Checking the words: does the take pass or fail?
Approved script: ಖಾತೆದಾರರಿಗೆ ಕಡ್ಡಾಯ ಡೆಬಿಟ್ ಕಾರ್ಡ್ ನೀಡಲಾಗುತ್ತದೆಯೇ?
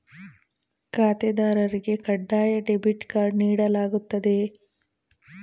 pass